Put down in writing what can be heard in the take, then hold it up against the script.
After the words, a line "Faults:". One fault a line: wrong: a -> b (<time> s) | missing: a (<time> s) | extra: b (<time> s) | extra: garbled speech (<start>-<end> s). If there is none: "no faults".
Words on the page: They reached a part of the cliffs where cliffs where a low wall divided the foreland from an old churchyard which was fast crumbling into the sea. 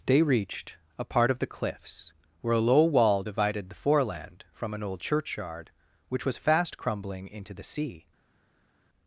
They reached a part of the cliffs where a low wall divided the foreland from an old churchyard which was fast crumbling into the sea.
Faults:
missing: cliffs where (2.5 s)